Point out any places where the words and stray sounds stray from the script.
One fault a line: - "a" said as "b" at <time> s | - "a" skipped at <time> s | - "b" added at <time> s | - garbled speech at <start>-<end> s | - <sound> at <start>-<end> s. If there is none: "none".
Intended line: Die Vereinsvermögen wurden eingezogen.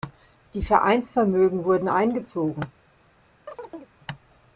- chirp at 3.5-3.9 s